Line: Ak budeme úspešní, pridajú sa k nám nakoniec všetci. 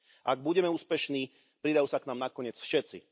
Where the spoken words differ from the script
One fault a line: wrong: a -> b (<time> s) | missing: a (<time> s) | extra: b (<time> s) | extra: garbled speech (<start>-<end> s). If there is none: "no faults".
no faults